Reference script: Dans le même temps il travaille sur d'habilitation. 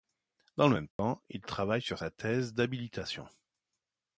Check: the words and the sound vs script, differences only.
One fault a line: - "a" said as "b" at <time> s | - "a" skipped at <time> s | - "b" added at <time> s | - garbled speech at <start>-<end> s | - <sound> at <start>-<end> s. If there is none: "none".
- dropout at 0.9-1.0 s
- "sa thèse" added at 2.0 s